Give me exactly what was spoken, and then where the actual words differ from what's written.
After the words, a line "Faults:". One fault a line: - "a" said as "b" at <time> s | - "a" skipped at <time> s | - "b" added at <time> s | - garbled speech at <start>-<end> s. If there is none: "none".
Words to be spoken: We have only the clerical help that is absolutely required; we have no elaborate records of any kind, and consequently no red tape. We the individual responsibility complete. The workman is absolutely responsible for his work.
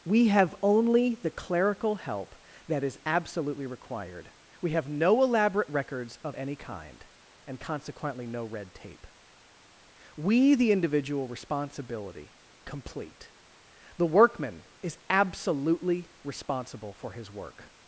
We have only the clerical help that is absolutely required; we have no elaborate records of any kind, and consequently no red tape. We the individual responsibility complete. The workman is absolutely responsible for his work.
Faults:
none